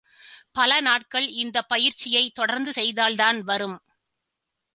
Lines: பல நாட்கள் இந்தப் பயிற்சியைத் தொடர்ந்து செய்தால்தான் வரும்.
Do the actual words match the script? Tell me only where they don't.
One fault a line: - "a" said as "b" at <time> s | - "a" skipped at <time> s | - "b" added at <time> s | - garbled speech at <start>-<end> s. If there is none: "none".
none